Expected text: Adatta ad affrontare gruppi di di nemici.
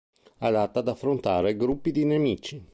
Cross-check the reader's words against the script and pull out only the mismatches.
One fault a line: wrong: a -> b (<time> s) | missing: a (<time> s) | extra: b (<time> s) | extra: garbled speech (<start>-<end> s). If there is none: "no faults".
missing: di (2.0 s)